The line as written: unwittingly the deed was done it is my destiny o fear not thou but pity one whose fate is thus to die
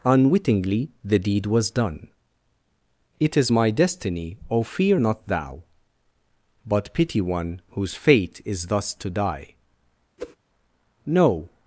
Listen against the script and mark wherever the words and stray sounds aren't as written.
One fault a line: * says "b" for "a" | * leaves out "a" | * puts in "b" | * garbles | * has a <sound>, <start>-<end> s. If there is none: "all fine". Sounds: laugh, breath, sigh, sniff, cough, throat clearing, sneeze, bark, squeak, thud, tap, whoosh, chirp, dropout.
* has a whoosh, 10.2-10.4 s
* puts in "no"